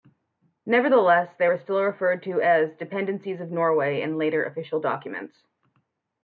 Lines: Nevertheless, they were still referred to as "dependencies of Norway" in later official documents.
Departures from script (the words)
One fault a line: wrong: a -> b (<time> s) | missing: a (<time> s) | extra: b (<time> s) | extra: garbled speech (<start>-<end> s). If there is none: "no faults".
no faults